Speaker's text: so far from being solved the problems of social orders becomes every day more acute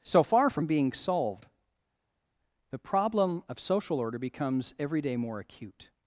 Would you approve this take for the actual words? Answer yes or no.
no